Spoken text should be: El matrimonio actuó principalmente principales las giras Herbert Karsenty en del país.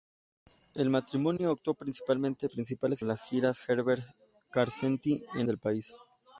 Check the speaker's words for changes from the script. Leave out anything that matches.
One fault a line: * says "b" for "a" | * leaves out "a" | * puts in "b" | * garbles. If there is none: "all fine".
all fine